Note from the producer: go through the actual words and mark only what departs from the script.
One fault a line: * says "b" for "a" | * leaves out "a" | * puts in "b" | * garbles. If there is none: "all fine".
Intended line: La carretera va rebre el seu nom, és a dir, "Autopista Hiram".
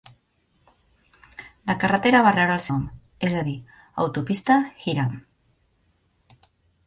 * leaves out "seu"